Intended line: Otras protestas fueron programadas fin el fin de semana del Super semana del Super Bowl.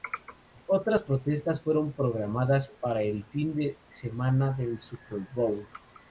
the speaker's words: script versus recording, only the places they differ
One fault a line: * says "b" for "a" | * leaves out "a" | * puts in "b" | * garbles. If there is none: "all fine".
* says "para" for "fin"
* leaves out "semana del Super"